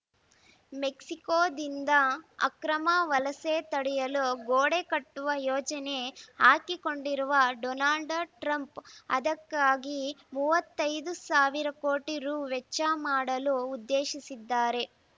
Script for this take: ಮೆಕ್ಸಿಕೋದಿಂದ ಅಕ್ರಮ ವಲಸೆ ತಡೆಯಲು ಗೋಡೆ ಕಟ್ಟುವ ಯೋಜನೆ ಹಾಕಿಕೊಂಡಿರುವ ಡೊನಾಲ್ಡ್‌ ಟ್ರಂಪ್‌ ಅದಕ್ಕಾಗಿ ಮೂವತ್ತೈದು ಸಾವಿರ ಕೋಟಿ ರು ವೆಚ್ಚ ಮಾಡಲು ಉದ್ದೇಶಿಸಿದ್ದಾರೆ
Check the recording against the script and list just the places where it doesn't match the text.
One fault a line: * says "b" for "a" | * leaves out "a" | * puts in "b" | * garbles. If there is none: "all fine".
all fine